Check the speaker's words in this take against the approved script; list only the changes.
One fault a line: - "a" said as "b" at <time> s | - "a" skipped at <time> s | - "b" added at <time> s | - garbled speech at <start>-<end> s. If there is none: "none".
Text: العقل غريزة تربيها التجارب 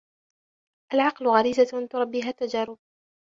none